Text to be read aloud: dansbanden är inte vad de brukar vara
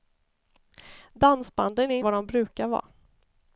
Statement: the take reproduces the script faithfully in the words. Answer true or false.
false